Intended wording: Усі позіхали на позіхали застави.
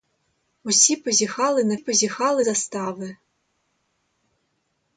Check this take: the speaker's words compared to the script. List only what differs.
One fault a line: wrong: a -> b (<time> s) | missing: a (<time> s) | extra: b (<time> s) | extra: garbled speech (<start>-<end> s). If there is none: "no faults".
no faults